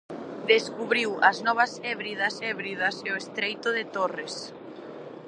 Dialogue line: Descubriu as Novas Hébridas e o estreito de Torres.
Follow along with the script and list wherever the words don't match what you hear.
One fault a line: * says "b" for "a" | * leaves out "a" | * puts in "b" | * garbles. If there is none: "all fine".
* puts in "Hébridas"